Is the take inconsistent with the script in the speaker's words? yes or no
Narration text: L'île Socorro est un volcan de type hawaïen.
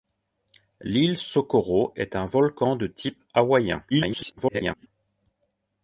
yes